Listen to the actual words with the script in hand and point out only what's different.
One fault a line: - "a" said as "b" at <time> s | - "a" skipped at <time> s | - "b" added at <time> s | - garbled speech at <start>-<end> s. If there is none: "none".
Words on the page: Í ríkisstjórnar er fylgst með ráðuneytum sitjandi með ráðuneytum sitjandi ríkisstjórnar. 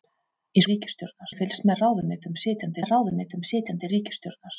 none